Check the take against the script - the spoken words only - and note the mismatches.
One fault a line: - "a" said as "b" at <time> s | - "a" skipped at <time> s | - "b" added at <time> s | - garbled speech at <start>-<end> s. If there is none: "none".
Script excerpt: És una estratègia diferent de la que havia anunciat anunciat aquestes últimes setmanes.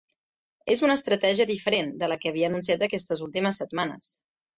- "anunciat" skipped at 2.9 s